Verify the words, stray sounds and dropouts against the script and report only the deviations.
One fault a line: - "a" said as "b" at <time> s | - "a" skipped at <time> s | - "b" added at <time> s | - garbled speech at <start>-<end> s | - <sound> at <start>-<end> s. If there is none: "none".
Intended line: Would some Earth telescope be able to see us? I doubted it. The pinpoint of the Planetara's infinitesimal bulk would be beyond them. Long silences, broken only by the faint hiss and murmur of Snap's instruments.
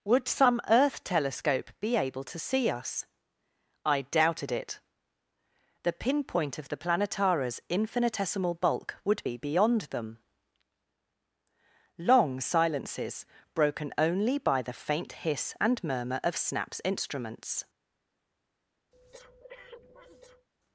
- breath at 18.9-20.5 s